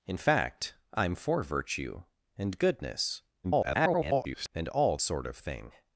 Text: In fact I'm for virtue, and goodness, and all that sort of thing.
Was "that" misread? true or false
true